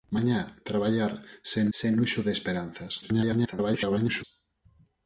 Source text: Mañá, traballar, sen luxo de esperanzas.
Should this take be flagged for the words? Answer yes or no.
yes